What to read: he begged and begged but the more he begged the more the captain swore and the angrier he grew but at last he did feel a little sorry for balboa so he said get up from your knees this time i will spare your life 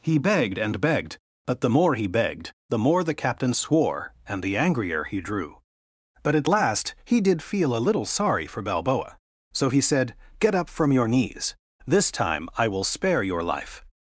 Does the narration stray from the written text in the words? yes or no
yes